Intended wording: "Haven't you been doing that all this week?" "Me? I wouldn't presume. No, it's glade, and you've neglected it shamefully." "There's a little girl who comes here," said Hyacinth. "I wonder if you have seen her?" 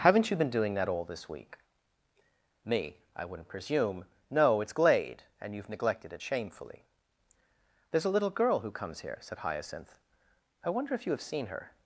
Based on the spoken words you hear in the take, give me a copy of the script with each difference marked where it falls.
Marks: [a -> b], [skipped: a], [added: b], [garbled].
"Haven't you been doing that all this week?" "Me? I wouldn't presume. No, it's glade, and you've neglected it shamefully." "There's a little girl who comes here," said Hyacinth. "I wonder if you have seen her?"